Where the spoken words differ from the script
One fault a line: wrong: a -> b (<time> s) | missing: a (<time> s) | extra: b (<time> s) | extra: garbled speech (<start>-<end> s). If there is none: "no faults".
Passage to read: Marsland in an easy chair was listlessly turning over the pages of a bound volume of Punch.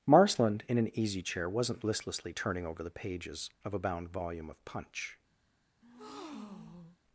wrong: was -> wasn't (1.5 s)